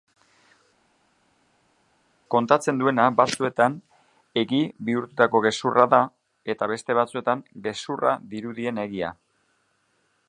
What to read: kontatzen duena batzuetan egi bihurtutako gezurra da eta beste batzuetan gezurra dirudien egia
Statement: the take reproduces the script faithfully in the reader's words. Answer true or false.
true